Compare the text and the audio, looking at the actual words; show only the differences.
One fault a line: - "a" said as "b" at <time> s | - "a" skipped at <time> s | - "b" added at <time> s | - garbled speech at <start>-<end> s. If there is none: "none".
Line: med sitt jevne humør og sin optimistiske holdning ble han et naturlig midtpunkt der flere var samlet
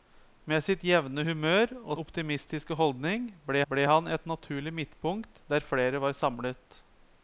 - "sin" skipped at 2.0 s
- "ble" added at 3.7 s